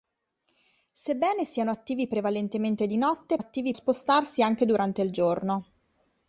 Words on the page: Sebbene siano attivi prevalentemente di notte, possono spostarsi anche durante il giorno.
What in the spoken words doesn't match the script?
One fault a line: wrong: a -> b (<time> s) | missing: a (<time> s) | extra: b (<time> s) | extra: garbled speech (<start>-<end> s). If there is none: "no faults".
wrong: possono -> attivi (3.4 s)